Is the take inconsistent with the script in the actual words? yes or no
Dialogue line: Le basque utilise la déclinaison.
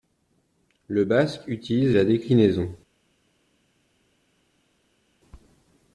no